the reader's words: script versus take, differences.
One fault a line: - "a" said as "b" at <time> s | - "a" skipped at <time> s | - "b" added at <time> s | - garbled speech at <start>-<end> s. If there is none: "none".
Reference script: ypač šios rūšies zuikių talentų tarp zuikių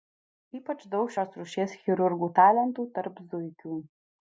- "daug" added at 0.9 s
- "zuikių" said as "chirurgų" at 1.8 s